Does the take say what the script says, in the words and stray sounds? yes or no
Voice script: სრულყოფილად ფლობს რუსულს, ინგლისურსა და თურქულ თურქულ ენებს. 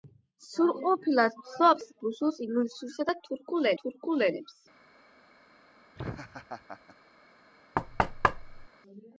no